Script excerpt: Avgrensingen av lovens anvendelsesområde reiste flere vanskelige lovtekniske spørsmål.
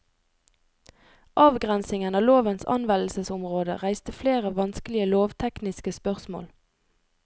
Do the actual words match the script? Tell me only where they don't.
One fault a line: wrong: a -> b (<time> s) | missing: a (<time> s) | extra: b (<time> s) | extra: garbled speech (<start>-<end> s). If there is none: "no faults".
no faults